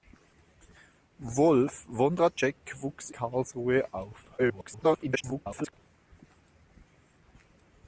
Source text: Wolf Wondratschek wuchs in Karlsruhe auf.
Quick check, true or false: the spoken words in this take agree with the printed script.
false